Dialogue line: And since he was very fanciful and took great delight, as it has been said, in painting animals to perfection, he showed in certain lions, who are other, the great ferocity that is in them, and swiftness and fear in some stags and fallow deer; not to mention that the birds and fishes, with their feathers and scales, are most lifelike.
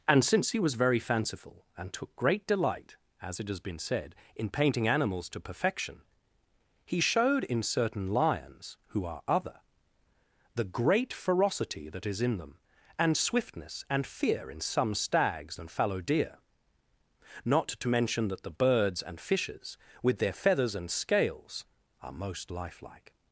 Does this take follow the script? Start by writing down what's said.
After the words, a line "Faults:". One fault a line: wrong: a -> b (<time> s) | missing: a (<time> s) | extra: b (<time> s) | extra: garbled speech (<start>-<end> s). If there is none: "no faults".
And since he was very fanciful and took great delight, as it has been said, in painting animals to perfection, he showed in certain lions, who are other, the great ferocity that is in them, and swiftness and fear in some stags and fallow deer; not to mention that the birds and fishes, with their feathers and scales, are most lifelike.
Faults:
no faults